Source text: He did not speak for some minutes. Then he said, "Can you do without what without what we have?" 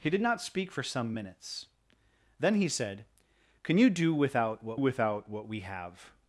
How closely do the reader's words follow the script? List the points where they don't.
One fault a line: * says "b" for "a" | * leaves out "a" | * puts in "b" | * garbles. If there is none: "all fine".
all fine